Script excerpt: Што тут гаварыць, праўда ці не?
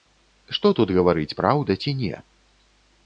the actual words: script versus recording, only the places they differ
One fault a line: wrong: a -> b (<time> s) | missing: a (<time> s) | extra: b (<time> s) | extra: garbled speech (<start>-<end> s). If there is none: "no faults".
no faults